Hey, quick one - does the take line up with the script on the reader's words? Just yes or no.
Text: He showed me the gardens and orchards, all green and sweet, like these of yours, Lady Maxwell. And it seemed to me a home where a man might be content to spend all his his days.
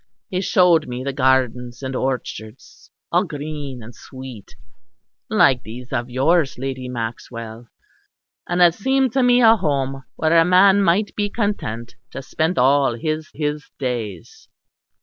yes